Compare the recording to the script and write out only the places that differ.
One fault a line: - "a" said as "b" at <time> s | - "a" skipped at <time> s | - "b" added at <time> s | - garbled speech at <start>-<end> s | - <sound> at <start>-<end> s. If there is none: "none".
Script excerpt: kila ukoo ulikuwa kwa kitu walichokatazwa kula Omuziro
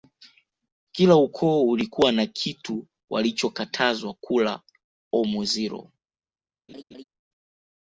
- "kwa" said as "na" at 2.1 s
- laugh at 6.7-7.0 s